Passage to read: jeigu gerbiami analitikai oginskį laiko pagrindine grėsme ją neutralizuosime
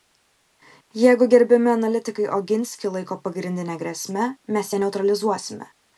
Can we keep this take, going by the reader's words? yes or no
no